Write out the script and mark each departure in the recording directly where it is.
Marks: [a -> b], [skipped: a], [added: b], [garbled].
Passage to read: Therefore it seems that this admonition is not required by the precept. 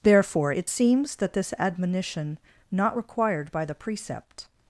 Therefore it seems that this admonition [skipped: is] not required by the precept.